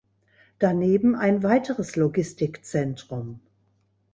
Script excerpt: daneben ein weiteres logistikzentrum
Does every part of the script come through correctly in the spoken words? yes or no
yes